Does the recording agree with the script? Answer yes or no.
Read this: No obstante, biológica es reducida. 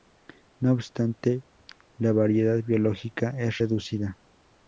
no